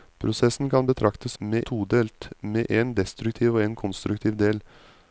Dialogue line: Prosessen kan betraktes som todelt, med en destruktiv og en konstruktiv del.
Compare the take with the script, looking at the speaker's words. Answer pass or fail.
fail